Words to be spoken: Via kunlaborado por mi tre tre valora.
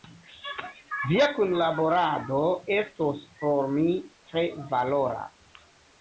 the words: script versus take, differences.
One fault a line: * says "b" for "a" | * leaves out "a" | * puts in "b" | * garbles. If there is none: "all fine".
* puts in "estos"
* leaves out "tre"